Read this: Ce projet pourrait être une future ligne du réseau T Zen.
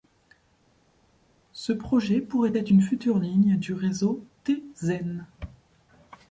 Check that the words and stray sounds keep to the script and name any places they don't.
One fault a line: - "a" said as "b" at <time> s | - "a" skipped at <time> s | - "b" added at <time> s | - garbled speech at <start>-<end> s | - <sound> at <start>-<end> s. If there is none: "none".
none